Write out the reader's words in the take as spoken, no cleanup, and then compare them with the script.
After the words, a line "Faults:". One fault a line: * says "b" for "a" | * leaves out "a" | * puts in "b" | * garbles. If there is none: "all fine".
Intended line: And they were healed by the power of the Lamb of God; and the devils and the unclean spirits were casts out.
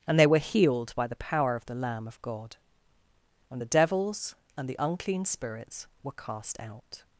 And they were healed by the power of the Lamb of God; and the devils and the unclean spirits were cast out.
Faults:
* says "cast" for "casts"